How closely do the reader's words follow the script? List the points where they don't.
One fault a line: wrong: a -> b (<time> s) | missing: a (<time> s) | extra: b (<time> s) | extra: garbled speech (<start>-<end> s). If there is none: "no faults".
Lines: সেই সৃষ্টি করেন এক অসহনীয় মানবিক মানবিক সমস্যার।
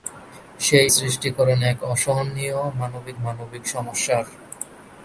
no faults